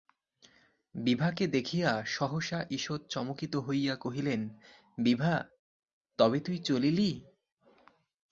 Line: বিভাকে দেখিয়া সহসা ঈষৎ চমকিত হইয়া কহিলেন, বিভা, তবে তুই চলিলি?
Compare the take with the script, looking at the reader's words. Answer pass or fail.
pass